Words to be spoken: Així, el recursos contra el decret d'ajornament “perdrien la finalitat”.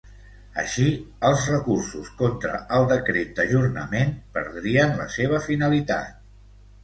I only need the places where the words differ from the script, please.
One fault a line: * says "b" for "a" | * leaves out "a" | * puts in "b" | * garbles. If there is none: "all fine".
* says "els" for "el"
* puts in "seva"